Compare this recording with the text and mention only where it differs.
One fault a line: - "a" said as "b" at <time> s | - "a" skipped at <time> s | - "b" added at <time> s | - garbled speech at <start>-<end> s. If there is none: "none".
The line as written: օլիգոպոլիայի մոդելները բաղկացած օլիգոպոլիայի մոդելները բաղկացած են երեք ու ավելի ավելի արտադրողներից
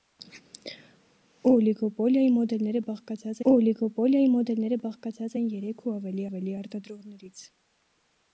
none